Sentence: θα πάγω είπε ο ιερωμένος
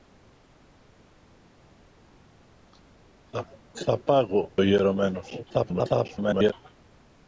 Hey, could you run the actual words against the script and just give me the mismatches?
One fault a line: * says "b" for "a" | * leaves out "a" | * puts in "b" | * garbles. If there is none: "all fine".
* leaves out "είπε"
* garbles